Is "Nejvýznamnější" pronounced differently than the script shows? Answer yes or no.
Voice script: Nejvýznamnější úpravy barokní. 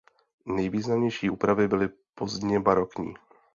no